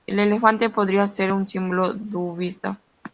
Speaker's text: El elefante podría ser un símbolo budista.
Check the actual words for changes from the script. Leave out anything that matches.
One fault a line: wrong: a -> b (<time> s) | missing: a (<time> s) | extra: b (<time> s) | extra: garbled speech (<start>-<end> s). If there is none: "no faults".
no faults